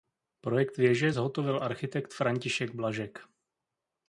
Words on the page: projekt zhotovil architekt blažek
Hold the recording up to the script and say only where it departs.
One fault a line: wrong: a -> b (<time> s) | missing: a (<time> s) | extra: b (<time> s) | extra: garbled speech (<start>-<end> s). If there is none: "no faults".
extra: věže (0.8 s)
extra: františek (2.1 s)